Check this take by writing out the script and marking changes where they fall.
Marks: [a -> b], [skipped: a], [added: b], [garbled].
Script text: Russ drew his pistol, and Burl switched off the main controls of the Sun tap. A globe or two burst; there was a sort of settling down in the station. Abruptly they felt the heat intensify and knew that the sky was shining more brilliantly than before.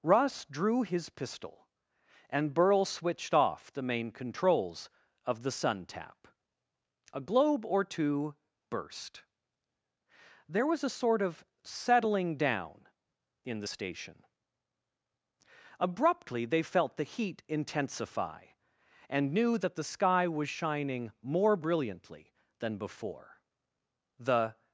Russ drew his pistol, and Burl switched off the main controls of the Sun tap. A globe or two burst; there was a sort of settling down in the station. Abruptly they felt the heat intensify and knew that the sky was shining more brilliantly than before. [added: The]